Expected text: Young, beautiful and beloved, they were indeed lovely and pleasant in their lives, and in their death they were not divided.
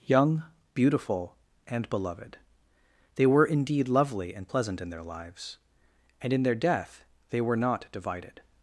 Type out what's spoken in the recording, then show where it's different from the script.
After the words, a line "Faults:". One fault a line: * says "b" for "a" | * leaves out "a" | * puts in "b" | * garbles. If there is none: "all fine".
Young, beautiful and beloved, they were indeed lovely and pleasant in their lives, and in their death they were not divided.
Faults:
all fine